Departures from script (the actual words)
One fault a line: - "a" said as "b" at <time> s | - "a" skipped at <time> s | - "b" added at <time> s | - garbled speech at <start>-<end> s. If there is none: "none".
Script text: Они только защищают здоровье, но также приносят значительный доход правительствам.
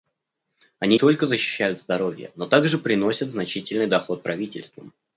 none